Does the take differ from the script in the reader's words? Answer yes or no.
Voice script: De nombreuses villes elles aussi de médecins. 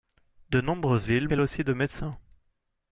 no